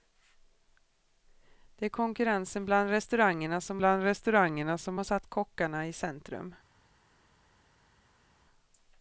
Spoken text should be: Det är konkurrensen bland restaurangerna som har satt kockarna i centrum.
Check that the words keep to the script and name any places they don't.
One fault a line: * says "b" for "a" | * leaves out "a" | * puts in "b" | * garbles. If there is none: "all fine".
* puts in "bland restaurangerna som"